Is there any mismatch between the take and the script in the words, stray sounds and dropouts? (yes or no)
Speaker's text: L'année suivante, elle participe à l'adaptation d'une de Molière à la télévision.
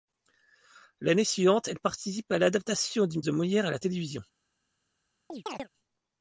yes